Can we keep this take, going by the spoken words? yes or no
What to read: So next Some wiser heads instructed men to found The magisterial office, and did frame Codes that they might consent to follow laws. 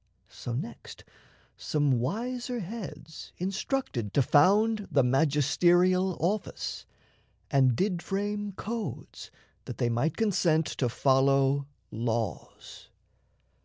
no